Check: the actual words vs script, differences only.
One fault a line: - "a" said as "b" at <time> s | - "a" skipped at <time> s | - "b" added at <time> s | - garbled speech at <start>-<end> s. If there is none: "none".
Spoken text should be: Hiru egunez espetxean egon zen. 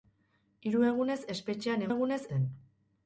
- "egon" said as "egunez" at 1.9 s